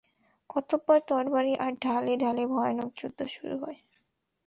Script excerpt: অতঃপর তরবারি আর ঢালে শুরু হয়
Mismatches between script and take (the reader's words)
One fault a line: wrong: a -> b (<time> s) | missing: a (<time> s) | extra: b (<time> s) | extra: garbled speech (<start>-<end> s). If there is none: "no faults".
extra: ঢালে ভয়ানক যুদ্ধ (2.2 s)